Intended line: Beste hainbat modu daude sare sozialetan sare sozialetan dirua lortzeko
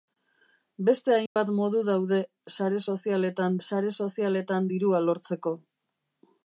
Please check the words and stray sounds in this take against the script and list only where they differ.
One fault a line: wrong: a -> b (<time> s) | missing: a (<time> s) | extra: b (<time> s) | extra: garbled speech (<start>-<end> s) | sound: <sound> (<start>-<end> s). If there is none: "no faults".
sound: dropout (1.3-1.4 s)